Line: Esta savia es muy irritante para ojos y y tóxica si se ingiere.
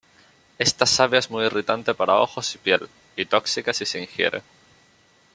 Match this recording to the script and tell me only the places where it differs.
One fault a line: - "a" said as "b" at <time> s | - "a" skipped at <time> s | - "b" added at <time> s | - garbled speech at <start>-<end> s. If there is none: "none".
- "piel" added at 2.6 s